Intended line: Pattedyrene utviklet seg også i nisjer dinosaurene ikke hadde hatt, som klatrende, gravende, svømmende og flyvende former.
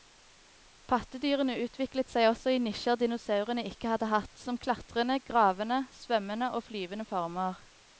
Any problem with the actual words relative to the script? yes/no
no